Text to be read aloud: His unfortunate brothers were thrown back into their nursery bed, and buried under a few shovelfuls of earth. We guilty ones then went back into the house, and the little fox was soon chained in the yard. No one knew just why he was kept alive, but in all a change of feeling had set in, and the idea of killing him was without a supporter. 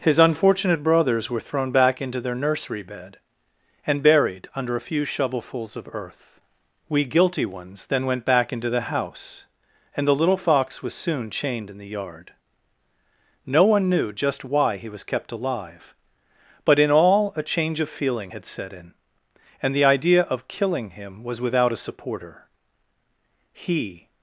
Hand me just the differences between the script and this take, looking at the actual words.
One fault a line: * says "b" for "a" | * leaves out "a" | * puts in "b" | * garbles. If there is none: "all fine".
* puts in "He"